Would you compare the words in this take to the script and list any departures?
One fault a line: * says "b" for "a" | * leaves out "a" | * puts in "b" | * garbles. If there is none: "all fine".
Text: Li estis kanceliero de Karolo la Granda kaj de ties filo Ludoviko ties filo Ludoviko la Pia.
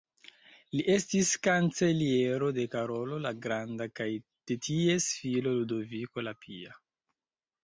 * leaves out "ties filo Ludoviko"